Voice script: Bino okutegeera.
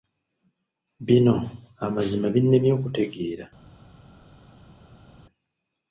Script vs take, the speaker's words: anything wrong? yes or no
yes